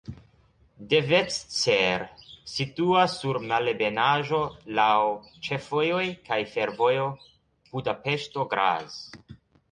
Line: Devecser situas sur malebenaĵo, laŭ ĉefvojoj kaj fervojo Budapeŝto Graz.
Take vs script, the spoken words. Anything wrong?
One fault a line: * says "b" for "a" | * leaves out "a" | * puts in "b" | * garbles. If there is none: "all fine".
all fine